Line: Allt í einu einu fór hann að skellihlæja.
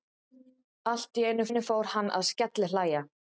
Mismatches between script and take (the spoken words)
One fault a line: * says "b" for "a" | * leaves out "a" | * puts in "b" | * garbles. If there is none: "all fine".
all fine